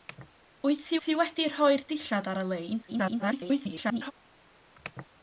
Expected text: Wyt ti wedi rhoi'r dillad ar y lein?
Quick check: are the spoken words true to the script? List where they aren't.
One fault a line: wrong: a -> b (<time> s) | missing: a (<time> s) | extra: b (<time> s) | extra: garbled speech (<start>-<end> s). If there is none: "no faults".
extra: ti (1.0 s)
extra: garbled speech (2.9-4.1 s)